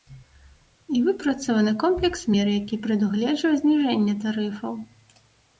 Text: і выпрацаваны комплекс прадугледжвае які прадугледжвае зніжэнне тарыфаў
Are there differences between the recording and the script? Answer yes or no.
yes